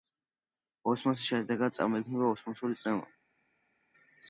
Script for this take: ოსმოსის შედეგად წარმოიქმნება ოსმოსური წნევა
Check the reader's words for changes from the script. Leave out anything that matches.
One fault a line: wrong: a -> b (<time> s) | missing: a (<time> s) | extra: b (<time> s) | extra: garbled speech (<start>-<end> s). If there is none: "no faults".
no faults